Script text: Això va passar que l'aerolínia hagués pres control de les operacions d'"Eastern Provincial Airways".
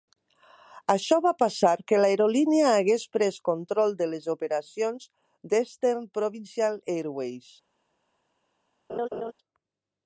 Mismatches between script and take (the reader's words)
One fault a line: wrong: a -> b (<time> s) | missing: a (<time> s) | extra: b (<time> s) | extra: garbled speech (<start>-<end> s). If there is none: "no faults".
no faults